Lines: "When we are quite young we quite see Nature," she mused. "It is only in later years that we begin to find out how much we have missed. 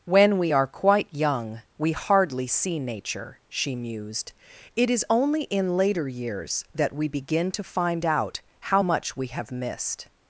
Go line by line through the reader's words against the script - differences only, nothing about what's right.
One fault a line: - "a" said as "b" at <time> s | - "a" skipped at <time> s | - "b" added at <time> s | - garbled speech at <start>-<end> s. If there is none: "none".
- "quite" said as "hardly" at 1.9 s